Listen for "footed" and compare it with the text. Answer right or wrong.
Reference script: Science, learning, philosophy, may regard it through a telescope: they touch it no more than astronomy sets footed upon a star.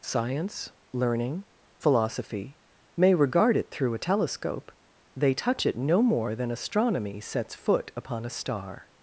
wrong